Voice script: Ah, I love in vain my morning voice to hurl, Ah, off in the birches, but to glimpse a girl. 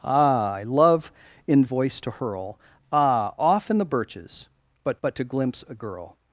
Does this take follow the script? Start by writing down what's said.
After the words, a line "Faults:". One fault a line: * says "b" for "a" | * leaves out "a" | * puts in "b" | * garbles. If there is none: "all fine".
Ah, I love in voice to hurl, Ah, off in the birches, but but to glimpse a girl.
Faults:
* leaves out "vain my morning"
* puts in "but"